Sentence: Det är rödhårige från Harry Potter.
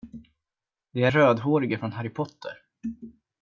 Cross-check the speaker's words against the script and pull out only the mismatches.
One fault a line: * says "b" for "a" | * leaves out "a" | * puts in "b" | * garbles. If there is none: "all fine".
all fine